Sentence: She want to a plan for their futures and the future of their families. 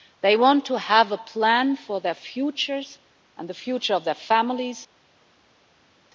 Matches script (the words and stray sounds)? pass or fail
fail